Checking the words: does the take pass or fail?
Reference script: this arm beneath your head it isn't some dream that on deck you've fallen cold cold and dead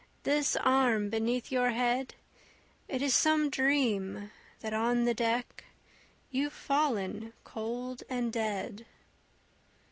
fail